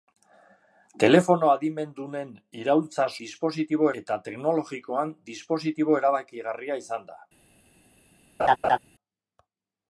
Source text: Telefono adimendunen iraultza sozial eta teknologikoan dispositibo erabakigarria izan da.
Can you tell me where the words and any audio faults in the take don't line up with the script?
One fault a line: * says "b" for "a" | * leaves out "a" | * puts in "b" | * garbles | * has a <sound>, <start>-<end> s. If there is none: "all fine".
* says "dispositibo" for "sozial"
* has a laugh, 8.4-8.8 s